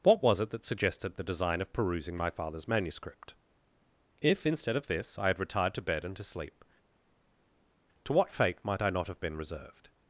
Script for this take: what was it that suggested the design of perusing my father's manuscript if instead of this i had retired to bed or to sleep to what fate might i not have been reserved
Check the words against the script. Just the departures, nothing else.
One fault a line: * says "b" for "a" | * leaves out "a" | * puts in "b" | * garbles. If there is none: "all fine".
* says "and" for "or"